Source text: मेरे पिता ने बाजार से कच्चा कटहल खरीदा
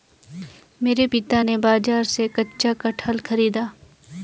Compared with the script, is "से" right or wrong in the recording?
right